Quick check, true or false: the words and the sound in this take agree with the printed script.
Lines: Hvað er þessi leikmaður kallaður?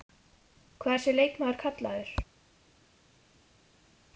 true